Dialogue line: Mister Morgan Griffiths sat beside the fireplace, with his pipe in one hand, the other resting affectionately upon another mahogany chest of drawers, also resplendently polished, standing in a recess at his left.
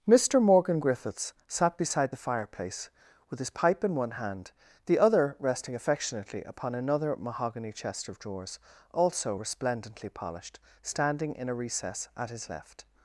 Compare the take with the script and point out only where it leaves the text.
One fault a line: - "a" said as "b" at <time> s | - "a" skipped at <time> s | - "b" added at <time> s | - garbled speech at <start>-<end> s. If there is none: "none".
none